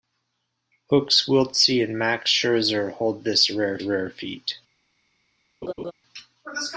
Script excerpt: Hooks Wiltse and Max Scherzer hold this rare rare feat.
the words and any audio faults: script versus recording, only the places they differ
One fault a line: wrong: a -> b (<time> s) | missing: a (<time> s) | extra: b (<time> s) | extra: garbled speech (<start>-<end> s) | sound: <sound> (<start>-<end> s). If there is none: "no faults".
sound: laugh (5.6-5.9 s)